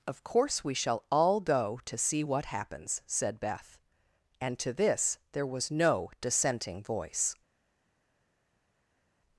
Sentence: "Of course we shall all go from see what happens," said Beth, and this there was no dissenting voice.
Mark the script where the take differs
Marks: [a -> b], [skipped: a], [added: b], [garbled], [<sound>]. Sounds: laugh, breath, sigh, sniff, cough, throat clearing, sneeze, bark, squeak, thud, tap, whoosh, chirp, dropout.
"Of course we shall all go [from -> to] see what happens," said Beth, and [added: to] this there was no dissenting voice.